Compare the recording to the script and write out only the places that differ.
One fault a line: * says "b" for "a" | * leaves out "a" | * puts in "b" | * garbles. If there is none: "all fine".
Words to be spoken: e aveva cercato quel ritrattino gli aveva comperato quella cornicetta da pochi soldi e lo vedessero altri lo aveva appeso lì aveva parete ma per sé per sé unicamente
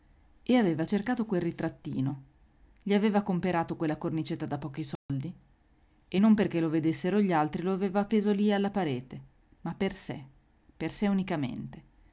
* puts in "non perché"
* puts in "gli"
* says "alla" for "aveva"